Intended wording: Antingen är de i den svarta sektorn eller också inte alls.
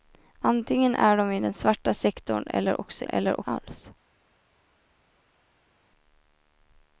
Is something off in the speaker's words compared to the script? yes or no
yes